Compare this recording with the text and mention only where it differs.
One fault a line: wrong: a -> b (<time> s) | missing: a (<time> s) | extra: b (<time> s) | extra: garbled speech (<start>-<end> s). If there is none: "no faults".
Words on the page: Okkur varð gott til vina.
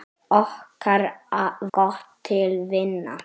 missing: varð (1.0 s)